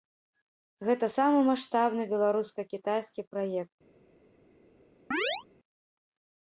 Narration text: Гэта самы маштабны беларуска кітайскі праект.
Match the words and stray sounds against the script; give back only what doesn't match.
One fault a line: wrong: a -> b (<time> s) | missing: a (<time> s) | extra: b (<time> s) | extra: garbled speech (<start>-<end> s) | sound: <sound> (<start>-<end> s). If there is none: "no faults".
sound: chirp (5.1-5.5 s)